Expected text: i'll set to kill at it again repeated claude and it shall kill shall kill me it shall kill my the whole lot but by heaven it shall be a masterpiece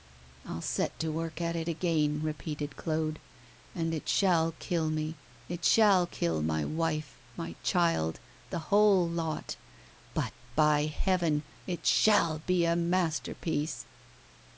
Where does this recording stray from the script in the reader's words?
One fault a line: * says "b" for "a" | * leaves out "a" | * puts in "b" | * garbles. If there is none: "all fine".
* says "work" for "kill"
* leaves out "shall kill"
* puts in "wife my child"